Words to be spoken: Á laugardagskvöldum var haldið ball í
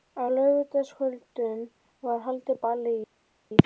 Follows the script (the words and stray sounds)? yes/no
yes